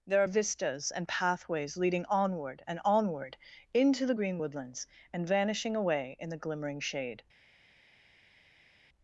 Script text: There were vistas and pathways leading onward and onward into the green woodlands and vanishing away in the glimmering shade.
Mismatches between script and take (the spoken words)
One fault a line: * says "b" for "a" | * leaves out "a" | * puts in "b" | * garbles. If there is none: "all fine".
* says "are" for "were"